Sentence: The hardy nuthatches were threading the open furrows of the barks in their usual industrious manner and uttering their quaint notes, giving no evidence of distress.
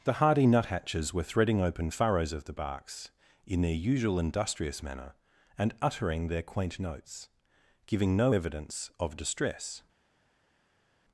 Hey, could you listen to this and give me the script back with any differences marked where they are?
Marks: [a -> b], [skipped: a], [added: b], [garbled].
The hardy nuthatches were threading [skipped: the] open furrows of the barks in their usual industrious manner and uttering their quaint notes, giving no evidence of distress.